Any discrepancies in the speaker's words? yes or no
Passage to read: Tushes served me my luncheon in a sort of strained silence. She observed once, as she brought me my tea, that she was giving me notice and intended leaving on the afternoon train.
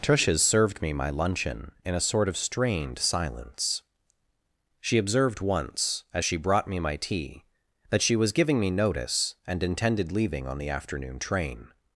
no